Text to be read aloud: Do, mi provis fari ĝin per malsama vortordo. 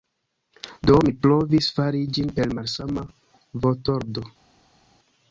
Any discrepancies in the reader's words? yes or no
no